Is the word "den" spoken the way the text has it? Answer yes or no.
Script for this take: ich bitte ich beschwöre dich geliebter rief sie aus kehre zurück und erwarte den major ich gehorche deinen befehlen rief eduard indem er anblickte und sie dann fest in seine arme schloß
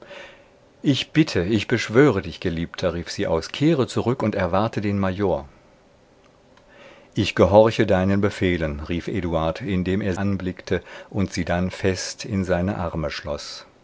yes